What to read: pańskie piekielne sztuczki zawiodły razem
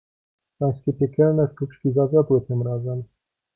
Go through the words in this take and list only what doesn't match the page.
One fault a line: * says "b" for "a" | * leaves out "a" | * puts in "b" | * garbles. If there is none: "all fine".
* puts in "tym"